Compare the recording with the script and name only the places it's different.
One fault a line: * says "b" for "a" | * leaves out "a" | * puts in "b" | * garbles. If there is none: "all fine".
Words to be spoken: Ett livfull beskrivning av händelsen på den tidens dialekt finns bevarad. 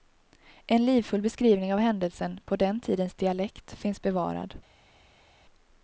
* says "En" for "Ett"